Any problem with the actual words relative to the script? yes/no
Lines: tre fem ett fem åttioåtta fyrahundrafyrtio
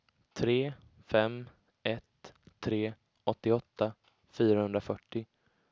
yes